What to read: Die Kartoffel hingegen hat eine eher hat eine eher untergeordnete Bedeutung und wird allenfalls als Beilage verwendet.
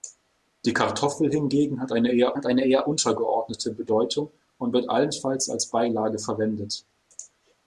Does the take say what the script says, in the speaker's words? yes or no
yes